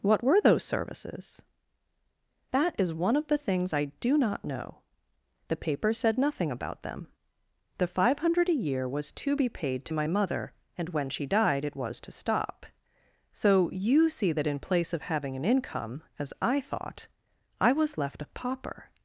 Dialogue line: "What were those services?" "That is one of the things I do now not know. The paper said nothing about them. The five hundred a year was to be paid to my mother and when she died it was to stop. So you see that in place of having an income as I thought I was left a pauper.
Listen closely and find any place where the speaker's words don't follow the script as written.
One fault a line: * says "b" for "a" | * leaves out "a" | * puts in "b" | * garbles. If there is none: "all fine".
* leaves out "now"